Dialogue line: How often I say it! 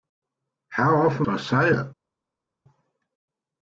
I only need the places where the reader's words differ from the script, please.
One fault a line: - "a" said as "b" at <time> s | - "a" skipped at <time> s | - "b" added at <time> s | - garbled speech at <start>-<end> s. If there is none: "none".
none